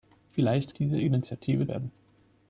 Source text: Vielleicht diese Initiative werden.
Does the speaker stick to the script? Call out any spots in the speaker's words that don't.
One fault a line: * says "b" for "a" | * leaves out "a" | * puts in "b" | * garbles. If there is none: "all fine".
all fine